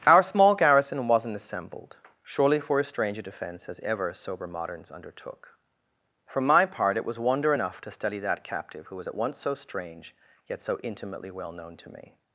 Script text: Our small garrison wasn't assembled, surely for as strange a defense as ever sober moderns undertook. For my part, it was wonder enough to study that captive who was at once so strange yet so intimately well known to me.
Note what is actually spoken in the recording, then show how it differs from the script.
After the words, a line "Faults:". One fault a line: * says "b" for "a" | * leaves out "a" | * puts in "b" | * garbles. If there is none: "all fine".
Our small garrison wasn't assembled, surely for as strange a defense as ever sober moderns undertook. For my part, it was wonder enough to study that captive who was at once so strange yet so intimately well known to me.
Faults:
all fine